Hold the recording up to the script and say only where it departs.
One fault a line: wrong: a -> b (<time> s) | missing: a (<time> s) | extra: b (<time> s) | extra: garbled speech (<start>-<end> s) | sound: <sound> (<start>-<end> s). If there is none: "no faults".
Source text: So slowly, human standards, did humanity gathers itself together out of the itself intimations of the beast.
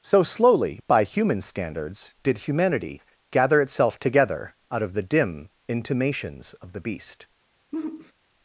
extra: by (0.9 s)
wrong: gathers -> gather (3.3 s)
wrong: itself -> dim (5.0 s)
sound: sigh (7.7-8.1 s)